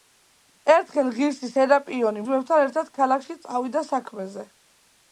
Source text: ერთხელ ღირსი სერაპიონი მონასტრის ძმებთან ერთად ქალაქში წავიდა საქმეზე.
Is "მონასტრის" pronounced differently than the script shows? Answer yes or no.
yes